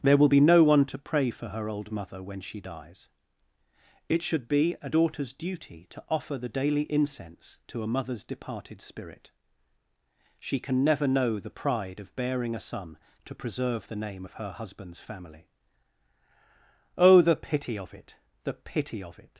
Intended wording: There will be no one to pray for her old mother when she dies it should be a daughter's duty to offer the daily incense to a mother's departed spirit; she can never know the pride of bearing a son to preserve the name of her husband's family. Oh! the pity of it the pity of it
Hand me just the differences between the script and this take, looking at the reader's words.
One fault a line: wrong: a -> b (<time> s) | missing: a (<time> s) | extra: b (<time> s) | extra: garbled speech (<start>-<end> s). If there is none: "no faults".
no faults